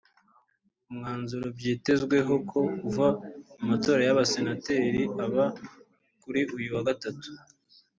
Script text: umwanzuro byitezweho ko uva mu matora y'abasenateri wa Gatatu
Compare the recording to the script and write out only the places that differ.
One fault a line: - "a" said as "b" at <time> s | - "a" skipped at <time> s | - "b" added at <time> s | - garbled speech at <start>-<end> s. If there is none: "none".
- "aba kuri uyu" added at 5.2 s